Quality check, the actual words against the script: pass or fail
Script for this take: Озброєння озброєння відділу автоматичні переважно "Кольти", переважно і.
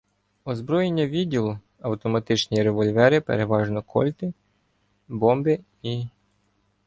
fail